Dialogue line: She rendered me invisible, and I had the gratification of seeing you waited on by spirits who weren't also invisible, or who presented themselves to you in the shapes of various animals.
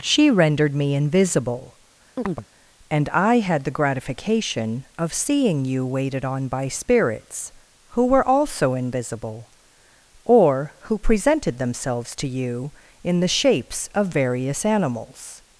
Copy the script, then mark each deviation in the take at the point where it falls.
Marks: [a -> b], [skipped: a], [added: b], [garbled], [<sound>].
She rendered me invisible, [chirp] and I had the gratification of seeing you waited on by spirits who [weren't -> were] also invisible, or who presented themselves to you in the shapes of various animals.